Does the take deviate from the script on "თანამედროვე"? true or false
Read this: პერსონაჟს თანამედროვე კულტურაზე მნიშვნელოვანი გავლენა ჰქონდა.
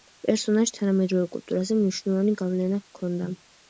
false